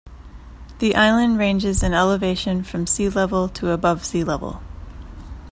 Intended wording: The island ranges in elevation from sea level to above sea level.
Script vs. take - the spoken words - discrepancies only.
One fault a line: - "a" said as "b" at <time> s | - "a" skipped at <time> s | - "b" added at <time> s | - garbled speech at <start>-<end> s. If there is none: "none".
none